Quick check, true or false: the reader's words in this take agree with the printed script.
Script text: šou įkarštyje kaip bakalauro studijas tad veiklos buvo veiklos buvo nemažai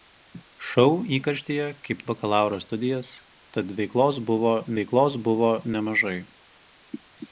true